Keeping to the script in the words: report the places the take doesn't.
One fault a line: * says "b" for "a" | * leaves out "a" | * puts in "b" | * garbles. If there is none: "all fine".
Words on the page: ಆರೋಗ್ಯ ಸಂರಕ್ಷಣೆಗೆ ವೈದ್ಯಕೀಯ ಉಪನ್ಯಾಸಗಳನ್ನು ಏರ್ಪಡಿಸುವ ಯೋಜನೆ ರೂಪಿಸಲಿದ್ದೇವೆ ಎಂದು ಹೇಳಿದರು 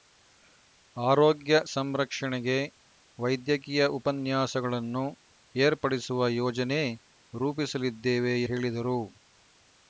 * leaves out "ಎಂದು"